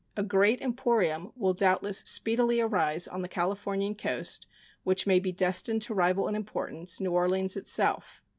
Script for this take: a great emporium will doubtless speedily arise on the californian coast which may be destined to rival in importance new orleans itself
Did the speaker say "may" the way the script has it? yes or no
yes